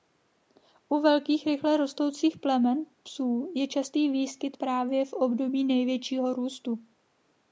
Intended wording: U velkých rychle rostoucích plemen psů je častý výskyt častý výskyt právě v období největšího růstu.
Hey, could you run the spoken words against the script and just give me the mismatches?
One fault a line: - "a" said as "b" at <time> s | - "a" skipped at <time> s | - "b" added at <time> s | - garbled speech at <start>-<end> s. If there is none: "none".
- "častý výskyt" skipped at 4.6 s